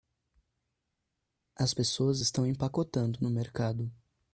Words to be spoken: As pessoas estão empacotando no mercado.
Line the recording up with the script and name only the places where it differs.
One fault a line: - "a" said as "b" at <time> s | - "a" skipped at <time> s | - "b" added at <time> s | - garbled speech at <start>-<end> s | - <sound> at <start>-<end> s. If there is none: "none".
none